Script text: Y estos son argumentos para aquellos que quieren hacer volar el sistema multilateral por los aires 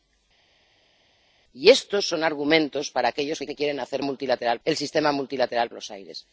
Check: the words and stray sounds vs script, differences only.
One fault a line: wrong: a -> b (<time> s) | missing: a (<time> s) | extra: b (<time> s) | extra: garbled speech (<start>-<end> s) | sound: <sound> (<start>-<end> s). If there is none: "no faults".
extra: que (3.5 s)
wrong: volar -> multilateral (4.0 s)
missing: por (5.7 s)